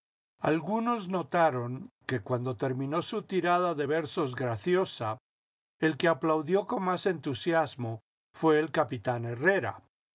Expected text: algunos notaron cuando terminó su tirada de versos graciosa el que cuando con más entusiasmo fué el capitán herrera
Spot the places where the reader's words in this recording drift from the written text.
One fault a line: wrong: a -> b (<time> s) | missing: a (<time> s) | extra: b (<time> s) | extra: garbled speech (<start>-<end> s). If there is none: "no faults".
extra: que (2.1 s)
wrong: cuando -> aplaudió (6.1 s)